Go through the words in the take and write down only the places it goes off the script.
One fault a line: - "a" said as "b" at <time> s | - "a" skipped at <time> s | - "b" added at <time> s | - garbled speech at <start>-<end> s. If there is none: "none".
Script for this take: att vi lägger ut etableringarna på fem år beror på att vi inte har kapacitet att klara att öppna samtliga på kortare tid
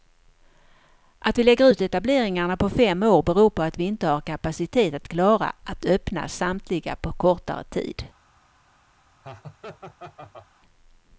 none